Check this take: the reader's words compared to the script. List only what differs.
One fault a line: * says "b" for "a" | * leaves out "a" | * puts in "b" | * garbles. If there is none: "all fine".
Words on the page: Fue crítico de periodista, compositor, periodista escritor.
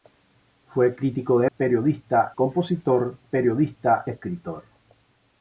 all fine